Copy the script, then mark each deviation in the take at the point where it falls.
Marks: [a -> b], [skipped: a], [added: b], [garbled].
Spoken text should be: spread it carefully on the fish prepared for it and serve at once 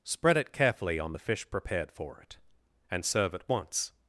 spread it carefully on the fish prepared for it and serve at once